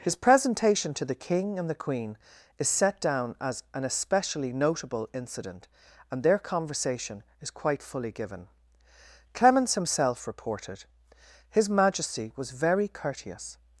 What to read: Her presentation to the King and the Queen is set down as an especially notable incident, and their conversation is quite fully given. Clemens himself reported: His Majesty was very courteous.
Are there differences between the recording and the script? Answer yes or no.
yes